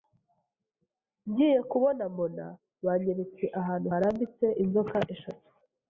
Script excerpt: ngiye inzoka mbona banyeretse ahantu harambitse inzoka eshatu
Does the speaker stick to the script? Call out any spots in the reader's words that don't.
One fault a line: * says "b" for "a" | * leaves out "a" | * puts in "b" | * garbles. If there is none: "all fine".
* says "kubona" for "inzoka"